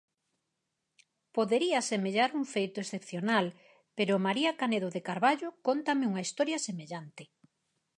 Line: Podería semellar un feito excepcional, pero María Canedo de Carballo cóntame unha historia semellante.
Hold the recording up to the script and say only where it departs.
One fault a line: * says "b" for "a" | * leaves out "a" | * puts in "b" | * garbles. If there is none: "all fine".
all fine